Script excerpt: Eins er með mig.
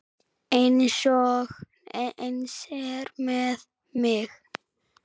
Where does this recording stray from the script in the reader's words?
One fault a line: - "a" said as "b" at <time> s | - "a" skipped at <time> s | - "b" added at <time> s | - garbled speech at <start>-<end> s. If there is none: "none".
none